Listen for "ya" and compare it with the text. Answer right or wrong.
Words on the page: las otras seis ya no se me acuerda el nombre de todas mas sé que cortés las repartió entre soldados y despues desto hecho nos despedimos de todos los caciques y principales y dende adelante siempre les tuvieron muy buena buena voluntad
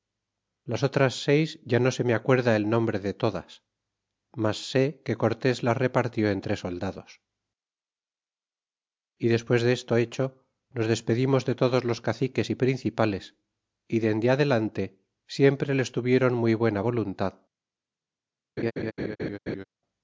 right